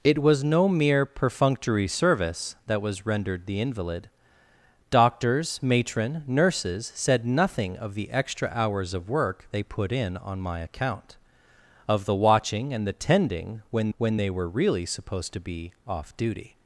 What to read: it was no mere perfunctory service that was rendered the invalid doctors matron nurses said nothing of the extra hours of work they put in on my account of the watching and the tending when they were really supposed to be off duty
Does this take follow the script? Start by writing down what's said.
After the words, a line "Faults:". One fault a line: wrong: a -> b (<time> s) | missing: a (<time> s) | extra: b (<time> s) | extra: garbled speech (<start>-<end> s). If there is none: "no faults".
it was no mere perfunctory service that was rendered the invalid doctors matron nurses said nothing of the extra hours of work they put in on my account of the watching and the tending when when they were really supposed to be off duty
Faults:
extra: when (14.0 s)